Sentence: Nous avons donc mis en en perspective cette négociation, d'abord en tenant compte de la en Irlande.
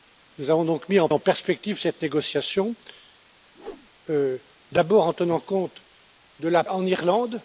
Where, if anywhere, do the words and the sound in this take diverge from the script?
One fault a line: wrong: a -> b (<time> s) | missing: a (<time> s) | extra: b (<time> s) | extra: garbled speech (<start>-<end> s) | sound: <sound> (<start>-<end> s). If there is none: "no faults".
sound: whoosh (3.5-3.9 s)